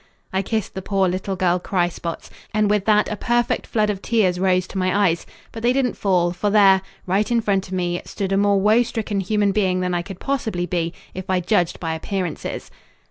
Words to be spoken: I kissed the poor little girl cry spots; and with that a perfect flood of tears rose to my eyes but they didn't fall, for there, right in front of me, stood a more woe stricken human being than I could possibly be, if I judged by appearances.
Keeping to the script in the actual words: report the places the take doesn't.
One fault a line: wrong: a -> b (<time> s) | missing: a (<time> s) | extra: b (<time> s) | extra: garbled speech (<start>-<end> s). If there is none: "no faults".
no faults